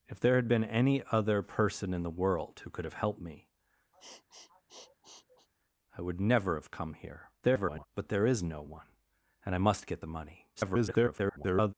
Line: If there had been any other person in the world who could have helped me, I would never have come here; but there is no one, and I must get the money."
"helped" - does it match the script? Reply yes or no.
yes